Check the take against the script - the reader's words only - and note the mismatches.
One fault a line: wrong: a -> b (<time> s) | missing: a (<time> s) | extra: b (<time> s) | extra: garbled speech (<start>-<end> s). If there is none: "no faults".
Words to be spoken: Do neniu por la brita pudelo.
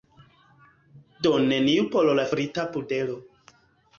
no faults